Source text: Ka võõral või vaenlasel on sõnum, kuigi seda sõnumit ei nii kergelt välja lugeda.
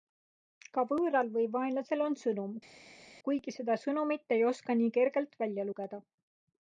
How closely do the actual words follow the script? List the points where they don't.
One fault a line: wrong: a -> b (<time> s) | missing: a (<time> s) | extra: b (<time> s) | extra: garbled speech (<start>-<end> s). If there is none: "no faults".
extra: oska (4.5 s)